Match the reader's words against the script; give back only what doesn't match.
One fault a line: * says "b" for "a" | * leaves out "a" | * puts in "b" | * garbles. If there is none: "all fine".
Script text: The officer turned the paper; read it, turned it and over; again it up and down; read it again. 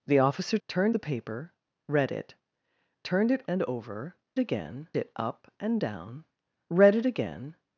all fine